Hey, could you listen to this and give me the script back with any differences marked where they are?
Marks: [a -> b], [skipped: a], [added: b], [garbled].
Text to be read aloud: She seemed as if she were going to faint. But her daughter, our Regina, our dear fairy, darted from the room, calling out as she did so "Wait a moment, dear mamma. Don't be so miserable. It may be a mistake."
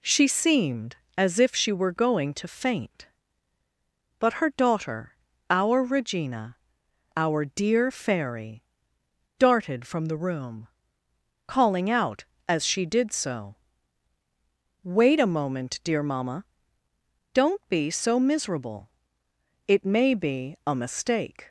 She seemed as if she were going to faint. But her daughter, our Regina, our dear fairy, darted from the room, calling out as she did so "Wait a moment, dear mamma. Don't be so miserable. It may be a mistake."